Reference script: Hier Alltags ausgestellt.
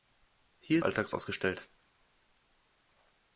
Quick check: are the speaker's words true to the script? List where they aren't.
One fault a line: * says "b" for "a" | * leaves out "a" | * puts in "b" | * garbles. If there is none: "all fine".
all fine